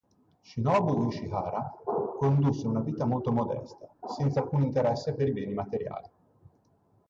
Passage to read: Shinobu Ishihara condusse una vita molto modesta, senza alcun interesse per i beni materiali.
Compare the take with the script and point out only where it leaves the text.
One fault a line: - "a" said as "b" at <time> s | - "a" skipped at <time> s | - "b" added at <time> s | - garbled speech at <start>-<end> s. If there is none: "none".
none